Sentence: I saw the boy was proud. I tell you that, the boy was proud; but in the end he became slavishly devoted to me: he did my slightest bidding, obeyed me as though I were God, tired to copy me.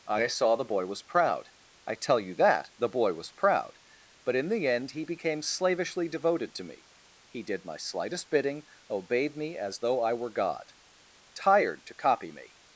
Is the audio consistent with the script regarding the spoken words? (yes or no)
yes